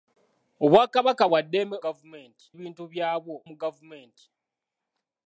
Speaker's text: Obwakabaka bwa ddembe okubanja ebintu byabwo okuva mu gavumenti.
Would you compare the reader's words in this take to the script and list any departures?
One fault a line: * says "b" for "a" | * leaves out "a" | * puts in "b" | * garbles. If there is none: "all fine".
* says "gavumenti" for "okubanja"
* leaves out "okuva"